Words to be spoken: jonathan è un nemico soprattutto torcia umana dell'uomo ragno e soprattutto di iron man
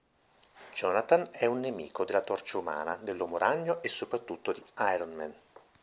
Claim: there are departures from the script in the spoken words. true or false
true